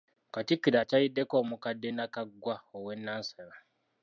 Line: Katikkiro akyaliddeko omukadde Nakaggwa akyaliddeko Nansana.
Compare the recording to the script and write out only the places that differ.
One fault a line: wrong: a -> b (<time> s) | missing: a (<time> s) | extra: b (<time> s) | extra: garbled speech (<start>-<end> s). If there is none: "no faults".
wrong: akyaliddeko -> owe (2.8 s)